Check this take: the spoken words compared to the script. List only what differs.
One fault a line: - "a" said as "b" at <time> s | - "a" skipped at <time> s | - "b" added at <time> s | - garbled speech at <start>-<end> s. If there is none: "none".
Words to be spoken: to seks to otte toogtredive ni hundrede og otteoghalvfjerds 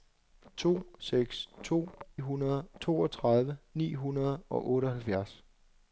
- "otte" said as "hundrede" at 2.2 s